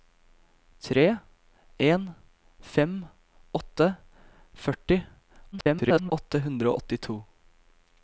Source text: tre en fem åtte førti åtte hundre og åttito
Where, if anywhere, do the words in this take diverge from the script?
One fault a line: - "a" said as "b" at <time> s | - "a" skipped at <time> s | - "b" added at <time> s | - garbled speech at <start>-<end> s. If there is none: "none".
- garbled speech at 5.5-6.1 s